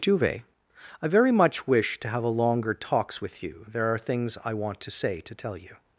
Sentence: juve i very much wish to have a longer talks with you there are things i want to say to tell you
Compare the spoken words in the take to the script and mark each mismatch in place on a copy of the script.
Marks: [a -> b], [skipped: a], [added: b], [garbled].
juve i very much wish to have a longer talks with you there are things i want to say to tell you